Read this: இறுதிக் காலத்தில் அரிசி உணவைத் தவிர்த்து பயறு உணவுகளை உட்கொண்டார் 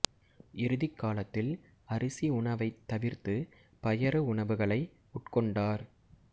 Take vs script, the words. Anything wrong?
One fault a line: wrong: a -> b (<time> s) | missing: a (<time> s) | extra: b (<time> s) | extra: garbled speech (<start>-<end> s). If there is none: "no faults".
no faults